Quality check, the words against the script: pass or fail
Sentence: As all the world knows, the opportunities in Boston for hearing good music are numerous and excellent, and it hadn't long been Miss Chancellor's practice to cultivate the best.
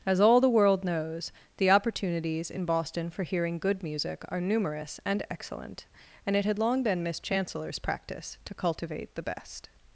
fail